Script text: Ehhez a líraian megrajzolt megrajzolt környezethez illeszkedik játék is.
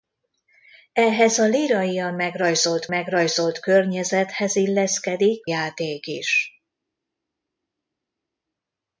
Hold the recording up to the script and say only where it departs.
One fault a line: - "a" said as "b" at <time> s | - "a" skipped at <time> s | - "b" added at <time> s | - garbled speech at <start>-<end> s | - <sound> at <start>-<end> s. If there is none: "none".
none